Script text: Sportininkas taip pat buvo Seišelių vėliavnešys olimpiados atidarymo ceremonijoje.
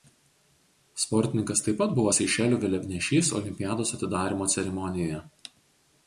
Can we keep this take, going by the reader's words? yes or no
yes